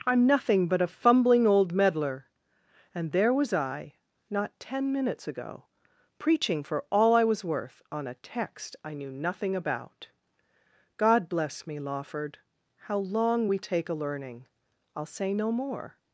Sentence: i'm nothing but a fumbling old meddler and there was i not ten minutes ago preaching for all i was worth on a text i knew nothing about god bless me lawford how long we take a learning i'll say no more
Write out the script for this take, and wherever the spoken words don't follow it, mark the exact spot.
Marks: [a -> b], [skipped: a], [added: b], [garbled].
i'm nothing but a fumbling old meddler and there was i not ten minutes ago preaching for all i was worth on a text i knew nothing about god bless me lawford how long we take a learning i'll say no more